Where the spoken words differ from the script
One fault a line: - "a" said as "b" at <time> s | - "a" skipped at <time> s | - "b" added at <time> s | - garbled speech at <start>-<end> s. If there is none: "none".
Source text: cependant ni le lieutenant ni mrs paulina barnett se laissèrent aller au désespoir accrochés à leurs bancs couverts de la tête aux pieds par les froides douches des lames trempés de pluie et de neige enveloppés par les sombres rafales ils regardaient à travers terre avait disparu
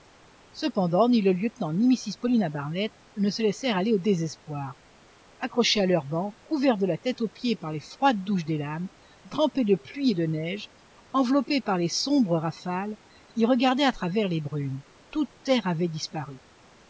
- "ne" added at 3.2 s
- "les brumes toute" added at 14.3 s